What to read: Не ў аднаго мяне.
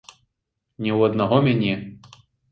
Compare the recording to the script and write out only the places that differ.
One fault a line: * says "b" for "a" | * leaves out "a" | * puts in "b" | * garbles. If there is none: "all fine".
all fine